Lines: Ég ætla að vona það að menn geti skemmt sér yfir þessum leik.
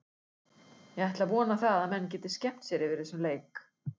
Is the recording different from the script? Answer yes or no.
no